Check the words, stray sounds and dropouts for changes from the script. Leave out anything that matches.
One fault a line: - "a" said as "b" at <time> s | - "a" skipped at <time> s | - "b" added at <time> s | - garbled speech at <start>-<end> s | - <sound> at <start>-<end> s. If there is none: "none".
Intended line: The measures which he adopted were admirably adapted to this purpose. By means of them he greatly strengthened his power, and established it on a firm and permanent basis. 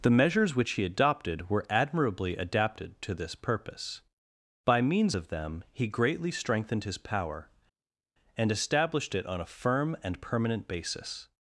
none